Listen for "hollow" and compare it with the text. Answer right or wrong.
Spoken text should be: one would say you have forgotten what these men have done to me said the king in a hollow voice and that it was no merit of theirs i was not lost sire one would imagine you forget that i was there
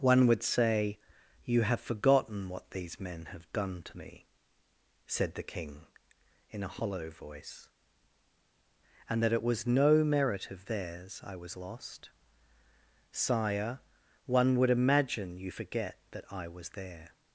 right